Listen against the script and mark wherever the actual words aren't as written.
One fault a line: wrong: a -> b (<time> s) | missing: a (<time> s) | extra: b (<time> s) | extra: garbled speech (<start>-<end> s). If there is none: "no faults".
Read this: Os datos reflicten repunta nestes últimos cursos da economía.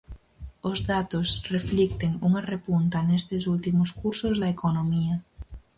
extra: unha (2.3 s)